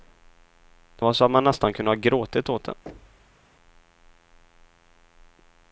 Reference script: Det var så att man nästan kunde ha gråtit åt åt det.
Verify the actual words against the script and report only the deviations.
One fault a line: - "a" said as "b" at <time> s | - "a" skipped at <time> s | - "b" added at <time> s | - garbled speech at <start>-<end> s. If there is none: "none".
- "åt" skipped at 2.6 s